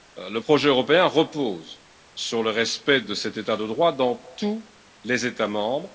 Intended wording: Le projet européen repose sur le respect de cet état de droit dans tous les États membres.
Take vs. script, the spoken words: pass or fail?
pass